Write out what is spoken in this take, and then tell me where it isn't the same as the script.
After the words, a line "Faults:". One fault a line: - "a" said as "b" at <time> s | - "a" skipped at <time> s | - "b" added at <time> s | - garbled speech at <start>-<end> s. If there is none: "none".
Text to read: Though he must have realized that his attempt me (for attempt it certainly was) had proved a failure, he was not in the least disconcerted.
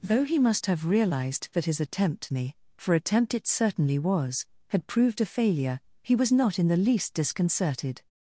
Though he must have realized that his attempt me (for attempt it certainly was) had proved a failure, he was not in the least disconcerted.
Faults:
none